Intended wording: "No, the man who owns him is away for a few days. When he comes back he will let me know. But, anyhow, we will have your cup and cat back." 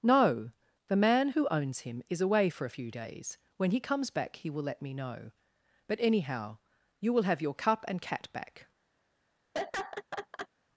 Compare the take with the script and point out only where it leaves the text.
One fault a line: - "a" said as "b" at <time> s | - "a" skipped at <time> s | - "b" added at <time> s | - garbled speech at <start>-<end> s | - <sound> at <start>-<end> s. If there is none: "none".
- "we" said as "you" at 7.0 s
- laugh at 9.5-10.5 s